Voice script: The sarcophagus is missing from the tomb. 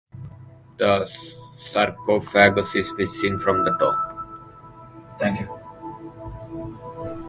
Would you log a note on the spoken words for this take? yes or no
no